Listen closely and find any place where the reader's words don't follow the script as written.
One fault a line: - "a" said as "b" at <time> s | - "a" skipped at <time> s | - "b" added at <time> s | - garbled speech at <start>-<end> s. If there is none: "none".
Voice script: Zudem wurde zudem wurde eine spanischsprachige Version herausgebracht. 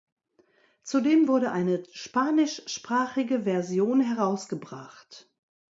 - "zudem wurde" skipped at 1.5 s